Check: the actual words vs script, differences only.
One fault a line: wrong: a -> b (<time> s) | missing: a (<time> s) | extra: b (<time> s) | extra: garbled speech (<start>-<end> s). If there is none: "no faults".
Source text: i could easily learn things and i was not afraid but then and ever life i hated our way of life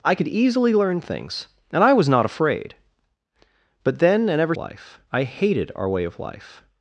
no faults